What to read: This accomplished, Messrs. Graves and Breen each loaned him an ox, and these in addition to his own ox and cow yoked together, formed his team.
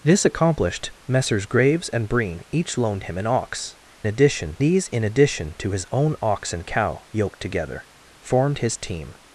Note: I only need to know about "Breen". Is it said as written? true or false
true